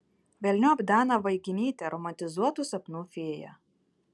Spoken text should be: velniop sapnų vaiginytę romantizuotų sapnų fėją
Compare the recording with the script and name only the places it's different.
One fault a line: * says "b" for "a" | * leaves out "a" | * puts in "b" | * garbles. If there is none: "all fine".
* says "daną" for "sapnų"